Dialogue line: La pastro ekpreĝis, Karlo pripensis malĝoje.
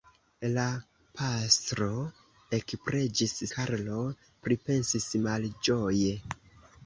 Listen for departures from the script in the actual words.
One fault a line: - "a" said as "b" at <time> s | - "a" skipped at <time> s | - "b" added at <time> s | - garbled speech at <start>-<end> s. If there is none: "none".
none